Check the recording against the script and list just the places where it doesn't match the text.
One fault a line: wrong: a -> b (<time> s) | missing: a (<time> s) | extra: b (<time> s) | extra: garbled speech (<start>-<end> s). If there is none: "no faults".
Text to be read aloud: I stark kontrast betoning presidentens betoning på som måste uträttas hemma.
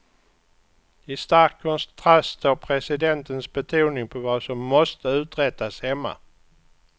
wrong: betoning -> står (2.4 s)
extra: vad (4.2 s)